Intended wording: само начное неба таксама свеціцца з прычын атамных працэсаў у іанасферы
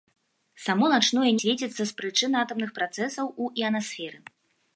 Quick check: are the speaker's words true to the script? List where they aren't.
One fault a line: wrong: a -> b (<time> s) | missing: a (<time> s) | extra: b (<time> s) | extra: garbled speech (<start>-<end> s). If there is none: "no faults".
missing: неба таксама (1.3 s)